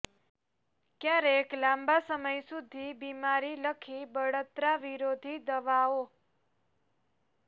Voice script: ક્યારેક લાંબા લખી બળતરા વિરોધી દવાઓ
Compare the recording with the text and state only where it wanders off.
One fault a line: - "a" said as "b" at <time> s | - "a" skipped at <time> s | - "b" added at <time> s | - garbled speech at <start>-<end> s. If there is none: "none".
- "સમય સુધી બીમારી" added at 2.1 s